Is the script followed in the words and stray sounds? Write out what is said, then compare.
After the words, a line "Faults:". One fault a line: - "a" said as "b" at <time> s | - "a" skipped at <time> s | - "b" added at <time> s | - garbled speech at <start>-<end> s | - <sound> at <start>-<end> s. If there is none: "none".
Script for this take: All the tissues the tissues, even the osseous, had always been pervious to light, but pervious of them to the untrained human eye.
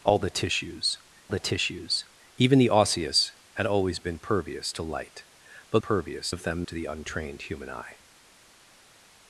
All the tissues the tissues, even the osseous, had always been pervious to light, but pervious of them to the untrained human eye.
Faults:
none